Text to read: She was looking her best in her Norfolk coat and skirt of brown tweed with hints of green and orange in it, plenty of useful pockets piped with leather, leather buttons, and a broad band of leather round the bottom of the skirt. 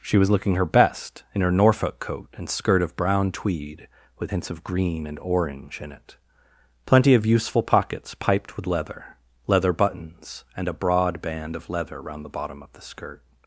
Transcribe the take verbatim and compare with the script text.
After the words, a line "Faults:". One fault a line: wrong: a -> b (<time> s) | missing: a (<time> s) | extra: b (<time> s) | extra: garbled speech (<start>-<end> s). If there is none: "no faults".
She was looking her best in her Norfolk coat and skirt of brown tweed with hints of green and orange in it, plenty of useful pockets piped with leather, leather buttons, and a broad band of leather round the bottom of the skirt.
Faults:
no faults